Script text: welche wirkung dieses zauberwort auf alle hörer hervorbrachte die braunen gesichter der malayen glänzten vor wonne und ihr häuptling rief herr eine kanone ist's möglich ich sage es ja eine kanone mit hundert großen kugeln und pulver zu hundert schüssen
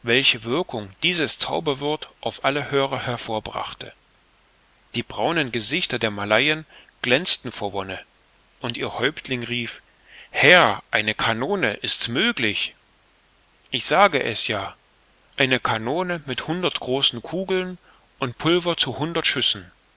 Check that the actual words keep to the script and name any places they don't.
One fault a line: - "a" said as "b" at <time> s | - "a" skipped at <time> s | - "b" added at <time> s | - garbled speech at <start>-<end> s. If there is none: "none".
none